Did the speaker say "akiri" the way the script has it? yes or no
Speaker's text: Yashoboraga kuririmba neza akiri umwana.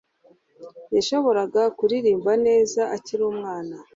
yes